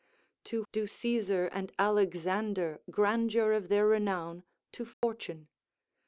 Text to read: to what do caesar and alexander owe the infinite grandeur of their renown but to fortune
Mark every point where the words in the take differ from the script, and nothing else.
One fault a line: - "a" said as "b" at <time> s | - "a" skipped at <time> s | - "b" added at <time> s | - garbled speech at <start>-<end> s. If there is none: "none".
- "what" skipped at 0.6 s
- "owe the infinite" skipped at 2.8 s
- "but" skipped at 4.4 s